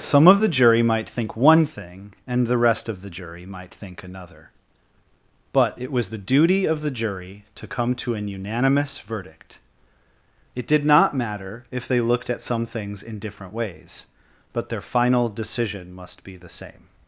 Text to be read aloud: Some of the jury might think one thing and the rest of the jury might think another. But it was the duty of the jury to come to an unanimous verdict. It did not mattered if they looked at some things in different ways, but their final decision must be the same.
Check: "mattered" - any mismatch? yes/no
yes